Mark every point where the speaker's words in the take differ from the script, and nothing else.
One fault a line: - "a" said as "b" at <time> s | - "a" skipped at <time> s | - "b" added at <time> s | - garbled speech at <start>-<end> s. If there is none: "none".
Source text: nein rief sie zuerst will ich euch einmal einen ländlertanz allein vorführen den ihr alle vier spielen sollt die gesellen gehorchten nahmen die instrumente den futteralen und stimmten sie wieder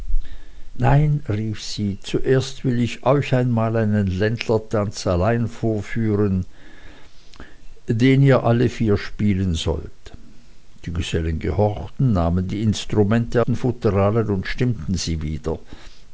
none